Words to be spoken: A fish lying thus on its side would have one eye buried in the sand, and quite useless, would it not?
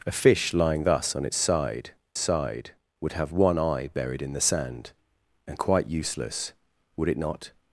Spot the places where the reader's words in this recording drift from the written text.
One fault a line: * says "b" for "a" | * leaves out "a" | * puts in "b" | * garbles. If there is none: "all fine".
* puts in "side"